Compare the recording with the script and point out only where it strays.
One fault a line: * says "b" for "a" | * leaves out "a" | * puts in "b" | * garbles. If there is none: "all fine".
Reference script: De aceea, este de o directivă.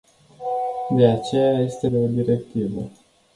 all fine